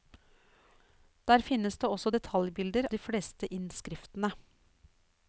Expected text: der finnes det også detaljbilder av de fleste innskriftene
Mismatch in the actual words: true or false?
true